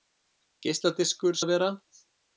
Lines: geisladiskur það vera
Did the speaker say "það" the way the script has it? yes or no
yes